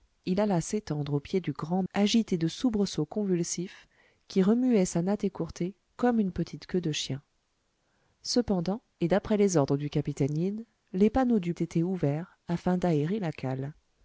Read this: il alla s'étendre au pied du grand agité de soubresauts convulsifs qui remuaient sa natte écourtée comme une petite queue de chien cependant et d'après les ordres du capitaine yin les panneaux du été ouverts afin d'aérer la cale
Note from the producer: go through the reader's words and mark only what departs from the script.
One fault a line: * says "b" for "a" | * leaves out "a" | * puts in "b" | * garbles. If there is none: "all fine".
all fine